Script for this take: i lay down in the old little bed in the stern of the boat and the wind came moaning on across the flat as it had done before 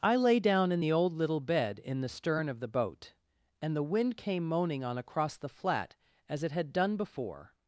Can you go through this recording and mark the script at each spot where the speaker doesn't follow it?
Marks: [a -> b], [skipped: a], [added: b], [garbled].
i lay down in the old little bed in the stern of the boat and the wind came moaning on across the flat as it had done before